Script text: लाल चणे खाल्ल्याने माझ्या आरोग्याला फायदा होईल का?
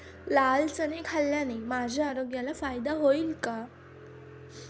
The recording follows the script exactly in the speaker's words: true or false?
true